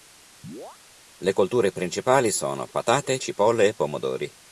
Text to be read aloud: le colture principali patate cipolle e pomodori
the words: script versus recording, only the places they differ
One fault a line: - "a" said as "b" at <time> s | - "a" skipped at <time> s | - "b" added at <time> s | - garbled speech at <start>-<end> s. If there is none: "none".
- "sono" added at 2.3 s